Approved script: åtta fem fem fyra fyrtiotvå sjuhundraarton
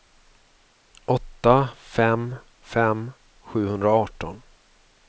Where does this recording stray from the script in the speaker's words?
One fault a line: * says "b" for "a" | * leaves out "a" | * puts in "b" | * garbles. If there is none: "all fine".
* leaves out "fyra fyrtiotvå"